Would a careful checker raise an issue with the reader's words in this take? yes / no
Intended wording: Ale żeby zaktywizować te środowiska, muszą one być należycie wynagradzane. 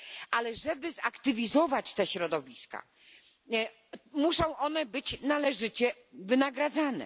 no